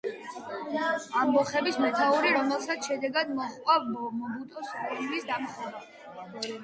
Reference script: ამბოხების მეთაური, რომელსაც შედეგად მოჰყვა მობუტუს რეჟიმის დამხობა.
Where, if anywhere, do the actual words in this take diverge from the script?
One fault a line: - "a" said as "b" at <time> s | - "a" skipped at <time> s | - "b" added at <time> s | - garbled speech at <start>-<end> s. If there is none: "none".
none